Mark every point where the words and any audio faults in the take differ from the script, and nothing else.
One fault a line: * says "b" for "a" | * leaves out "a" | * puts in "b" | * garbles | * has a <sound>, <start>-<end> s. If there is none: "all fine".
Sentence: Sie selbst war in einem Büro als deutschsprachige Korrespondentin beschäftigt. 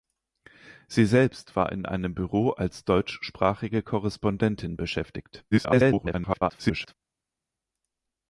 * garbles